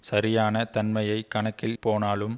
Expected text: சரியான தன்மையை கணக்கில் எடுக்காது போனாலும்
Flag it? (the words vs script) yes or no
yes